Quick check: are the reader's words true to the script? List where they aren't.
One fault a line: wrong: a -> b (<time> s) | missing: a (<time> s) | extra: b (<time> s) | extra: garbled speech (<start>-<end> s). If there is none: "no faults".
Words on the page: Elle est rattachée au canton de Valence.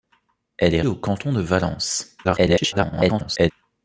missing: rattachée (0.8 s)
extra: garbled speech (2.2-3.5 s)